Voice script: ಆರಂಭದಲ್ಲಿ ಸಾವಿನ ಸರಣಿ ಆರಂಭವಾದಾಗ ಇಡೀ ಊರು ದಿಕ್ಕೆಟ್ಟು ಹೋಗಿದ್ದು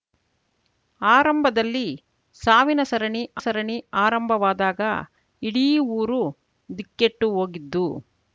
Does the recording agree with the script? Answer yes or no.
no